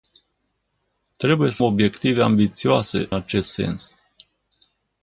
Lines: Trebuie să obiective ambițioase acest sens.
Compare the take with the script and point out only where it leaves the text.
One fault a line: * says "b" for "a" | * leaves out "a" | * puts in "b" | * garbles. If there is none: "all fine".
all fine